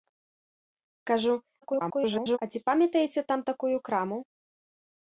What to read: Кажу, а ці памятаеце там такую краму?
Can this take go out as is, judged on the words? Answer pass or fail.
fail